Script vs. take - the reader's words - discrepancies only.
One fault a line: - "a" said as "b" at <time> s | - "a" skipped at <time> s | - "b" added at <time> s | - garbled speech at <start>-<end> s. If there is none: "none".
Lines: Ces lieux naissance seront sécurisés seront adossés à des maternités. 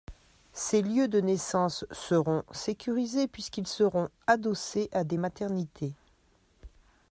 - "de" added at 1.1 s
- "puisqu'ils" added at 3.3 s